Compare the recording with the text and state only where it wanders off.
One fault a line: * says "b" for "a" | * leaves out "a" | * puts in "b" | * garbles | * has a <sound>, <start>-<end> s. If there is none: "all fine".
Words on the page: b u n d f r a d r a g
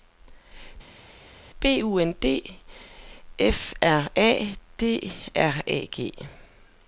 all fine